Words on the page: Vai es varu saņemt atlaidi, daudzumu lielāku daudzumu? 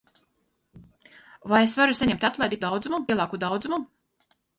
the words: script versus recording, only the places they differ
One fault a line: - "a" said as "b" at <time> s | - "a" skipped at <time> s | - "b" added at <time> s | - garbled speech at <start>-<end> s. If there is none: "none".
none